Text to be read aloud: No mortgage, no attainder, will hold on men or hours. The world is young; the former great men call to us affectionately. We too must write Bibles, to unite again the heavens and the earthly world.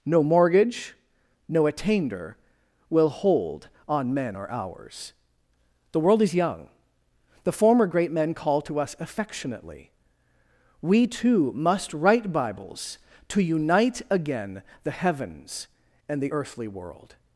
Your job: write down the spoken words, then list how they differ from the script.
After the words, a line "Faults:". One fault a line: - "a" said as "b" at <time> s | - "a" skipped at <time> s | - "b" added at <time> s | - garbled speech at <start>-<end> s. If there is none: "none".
No mortgage, no attainder, will hold on men or hours. The world is young; the former great men call to us affectionately. We too must write Bibles, to unite again the heavens and the earthly world.
Faults:
none